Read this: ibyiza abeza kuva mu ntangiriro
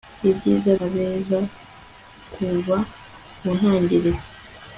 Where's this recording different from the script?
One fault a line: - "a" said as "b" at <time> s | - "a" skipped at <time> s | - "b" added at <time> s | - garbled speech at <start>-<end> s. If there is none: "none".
none